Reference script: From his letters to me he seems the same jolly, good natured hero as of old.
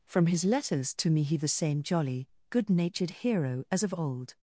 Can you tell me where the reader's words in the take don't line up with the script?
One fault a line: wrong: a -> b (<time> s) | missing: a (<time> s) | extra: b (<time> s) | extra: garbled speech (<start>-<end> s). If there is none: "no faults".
missing: seems (1.4 s)